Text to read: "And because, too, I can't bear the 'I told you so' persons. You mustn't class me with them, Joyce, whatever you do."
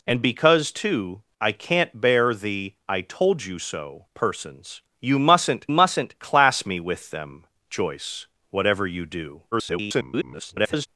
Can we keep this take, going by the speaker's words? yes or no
no